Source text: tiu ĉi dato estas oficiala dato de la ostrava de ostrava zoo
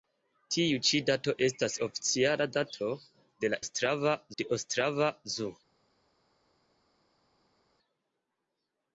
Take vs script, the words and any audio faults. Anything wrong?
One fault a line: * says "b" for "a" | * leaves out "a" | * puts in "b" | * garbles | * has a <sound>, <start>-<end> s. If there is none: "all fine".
all fine